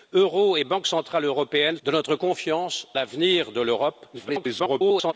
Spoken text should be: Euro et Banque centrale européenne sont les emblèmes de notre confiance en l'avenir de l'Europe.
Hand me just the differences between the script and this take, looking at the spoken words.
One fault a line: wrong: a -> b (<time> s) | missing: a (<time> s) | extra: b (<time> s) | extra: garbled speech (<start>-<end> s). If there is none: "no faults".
missing: sont les emblèmes (1.8 s)
missing: en (2.9 s)
extra: garbled speech (4.1-5.1 s)